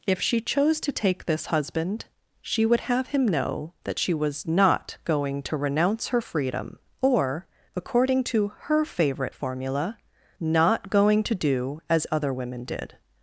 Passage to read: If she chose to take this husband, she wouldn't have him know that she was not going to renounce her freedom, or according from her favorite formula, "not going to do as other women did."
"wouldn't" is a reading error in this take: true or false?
true